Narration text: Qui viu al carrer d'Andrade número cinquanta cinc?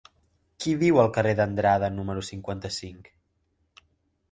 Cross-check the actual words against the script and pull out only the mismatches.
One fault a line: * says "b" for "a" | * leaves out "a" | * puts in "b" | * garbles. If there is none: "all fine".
all fine